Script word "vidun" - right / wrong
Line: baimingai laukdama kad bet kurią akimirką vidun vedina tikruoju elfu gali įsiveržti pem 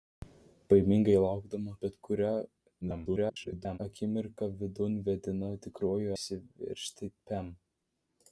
right